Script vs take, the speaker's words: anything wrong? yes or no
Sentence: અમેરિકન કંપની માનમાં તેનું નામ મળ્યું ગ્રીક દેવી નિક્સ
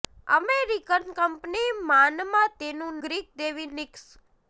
yes